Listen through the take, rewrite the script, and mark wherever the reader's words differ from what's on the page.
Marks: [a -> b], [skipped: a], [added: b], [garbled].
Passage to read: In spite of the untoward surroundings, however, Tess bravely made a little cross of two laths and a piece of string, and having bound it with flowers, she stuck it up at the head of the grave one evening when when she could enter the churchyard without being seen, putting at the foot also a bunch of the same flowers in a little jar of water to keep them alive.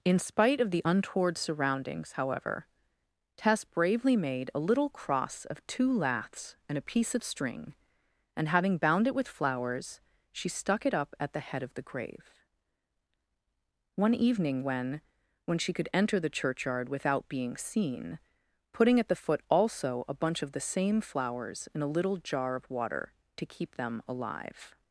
In spite of the untoward surroundings, however, Tess bravely made a little cross of two laths and a piece of string, and having bound it with flowers, she stuck it up at the head of the grave one evening when when she could enter the churchyard without being seen, putting at the foot also a bunch of the same flowers in a little jar of water to keep them alive.